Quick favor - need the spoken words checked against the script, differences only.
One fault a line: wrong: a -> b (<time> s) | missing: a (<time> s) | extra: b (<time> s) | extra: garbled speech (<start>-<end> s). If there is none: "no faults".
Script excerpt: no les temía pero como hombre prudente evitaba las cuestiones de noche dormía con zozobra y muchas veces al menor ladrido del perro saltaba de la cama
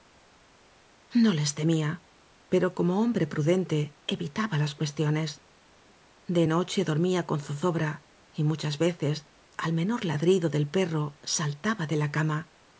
no faults